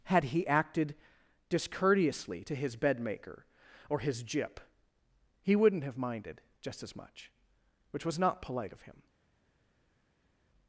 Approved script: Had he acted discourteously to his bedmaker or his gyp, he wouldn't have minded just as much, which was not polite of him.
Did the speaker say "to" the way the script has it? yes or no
yes